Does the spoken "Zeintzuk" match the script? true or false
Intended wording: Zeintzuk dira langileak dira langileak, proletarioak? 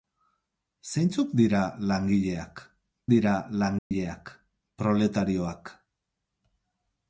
true